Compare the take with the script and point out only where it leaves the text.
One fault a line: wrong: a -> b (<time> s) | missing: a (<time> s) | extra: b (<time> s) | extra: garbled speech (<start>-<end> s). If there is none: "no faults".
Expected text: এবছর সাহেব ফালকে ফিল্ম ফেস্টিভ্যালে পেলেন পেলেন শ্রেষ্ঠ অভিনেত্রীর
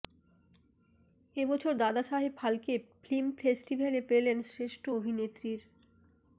extra: দাদা (1.8 s)
missing: পেলেন (4.4 s)